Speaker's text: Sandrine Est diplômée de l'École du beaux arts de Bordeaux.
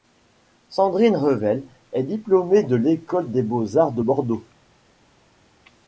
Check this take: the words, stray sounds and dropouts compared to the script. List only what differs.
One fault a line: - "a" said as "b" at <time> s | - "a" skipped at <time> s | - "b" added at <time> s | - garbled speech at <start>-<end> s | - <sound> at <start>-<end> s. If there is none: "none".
- "Revel" added at 1.1 s
- "du" said as "des" at 3.3 s